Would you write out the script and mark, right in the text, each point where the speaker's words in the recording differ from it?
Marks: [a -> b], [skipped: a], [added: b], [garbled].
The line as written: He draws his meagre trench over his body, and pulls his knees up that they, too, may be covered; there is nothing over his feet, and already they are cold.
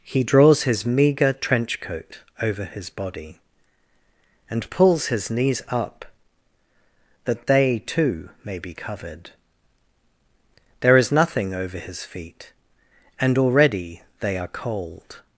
He draws his meagre trench [added: coat] over his body, and pulls his knees up that they, too, may be covered; there is nothing over his feet, and already they are cold.